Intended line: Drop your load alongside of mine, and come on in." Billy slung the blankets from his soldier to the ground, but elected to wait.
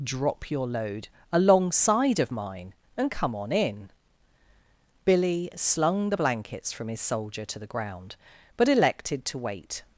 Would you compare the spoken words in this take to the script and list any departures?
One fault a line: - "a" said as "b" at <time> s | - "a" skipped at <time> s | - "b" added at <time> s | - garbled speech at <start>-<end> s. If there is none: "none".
none